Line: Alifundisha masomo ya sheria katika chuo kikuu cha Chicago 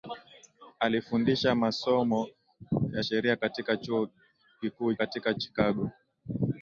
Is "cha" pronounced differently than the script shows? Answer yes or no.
yes